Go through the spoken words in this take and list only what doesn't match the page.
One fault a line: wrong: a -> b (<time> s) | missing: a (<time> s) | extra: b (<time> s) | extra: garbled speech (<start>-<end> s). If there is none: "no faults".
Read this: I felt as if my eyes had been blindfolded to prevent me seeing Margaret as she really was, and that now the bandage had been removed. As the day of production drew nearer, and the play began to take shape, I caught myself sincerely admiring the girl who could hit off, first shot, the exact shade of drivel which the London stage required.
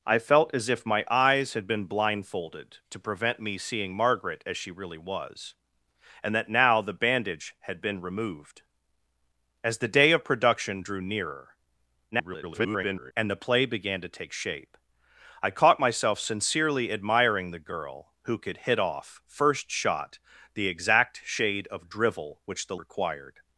extra: garbled speech (12.1-13.1 s)
missing: London stage (22.8 s)